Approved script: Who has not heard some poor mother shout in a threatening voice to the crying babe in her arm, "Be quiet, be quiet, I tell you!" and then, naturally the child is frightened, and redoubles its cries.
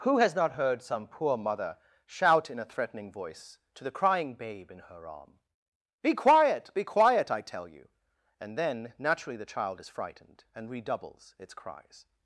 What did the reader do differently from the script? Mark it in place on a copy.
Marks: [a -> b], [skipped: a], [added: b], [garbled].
Who has not heard some poor mother shout in a threatening voice to the crying babe in her arm, "Be quiet, be quiet, I tell you!" and then, naturally the child is frightened, and redoubles its cries.